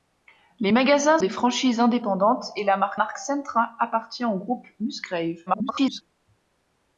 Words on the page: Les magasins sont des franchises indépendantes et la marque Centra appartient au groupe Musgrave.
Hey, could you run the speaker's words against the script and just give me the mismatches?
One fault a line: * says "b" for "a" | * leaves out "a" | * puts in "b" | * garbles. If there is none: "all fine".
* leaves out "sont"
* puts in "marque"
* garbles